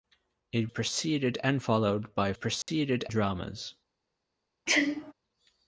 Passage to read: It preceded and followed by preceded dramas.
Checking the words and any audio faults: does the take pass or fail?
fail